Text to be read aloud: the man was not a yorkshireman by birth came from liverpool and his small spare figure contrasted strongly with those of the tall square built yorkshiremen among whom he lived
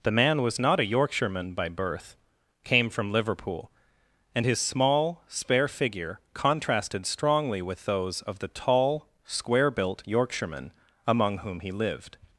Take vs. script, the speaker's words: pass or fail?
pass